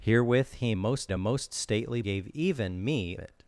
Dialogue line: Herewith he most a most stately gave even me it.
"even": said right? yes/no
yes